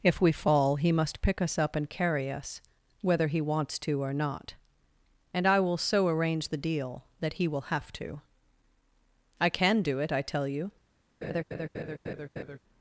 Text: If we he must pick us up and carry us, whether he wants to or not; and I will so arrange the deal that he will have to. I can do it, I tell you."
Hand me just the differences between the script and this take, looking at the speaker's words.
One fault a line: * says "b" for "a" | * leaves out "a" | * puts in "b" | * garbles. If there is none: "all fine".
* puts in "fall"